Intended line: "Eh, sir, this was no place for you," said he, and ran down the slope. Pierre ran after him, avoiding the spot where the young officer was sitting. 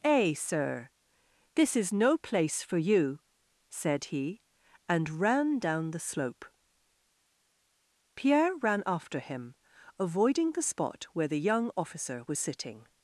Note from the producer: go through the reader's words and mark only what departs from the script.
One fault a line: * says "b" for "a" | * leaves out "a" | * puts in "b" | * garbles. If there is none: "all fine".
* says "is" for "was"